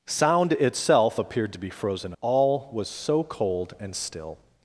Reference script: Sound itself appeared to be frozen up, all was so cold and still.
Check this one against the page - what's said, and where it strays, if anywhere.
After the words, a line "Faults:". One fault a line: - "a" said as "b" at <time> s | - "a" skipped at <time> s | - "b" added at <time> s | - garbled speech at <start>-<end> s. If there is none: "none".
Sound itself appeared to be frozen all was so cold and still.
Faults:
- "up" skipped at 2.1 s